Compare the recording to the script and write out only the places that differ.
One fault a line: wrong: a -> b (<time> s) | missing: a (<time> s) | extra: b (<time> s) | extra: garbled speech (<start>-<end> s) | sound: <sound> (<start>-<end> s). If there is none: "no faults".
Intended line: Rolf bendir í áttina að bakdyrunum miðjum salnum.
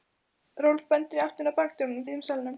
no faults